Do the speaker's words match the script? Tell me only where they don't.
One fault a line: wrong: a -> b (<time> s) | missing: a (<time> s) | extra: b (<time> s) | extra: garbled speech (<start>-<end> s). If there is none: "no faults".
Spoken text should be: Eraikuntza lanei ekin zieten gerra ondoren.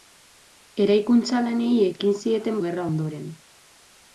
no faults